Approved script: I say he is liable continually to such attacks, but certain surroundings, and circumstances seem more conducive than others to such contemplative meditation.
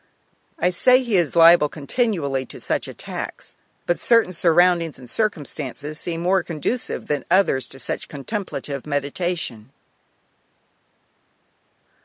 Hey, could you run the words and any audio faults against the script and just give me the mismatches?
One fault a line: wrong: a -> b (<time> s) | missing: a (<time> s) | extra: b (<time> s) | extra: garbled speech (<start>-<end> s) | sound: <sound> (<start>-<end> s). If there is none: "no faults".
no faults